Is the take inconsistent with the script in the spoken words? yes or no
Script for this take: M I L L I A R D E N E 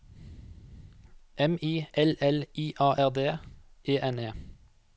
no